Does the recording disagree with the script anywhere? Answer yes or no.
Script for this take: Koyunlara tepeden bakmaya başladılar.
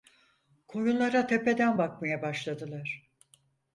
no